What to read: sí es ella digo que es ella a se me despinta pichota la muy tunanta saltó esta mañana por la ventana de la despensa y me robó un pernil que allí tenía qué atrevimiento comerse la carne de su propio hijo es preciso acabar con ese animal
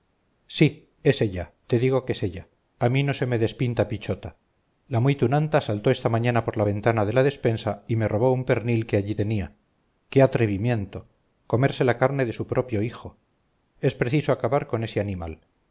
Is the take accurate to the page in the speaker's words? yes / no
no